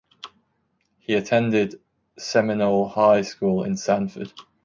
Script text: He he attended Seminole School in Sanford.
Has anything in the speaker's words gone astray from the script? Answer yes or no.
yes